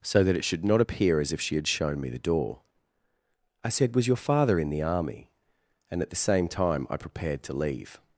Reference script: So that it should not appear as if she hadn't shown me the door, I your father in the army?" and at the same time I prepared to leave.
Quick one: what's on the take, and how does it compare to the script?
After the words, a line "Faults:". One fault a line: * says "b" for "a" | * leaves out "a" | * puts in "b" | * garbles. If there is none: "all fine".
So that it should not appear as if she had shown me the door, I said: "Was your father in the army?" and at the same time I prepared to leave.
Faults:
* says "had" for "hadn't"
* puts in "said Was"